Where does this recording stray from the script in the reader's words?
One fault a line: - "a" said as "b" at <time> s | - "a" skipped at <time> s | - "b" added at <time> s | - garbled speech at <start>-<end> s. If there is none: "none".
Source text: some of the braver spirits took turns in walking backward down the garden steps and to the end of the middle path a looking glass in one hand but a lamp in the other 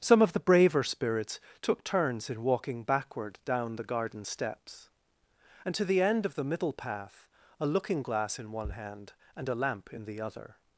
- "but" said as "and" at 9.4 s